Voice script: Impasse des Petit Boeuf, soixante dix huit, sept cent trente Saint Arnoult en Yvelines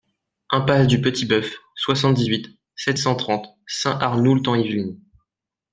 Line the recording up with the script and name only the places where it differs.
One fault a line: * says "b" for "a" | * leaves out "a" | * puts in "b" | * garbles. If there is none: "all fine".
* says "du" for "des"